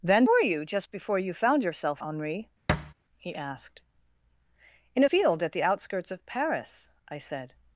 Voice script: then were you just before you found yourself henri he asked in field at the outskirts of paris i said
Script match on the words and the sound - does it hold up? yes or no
no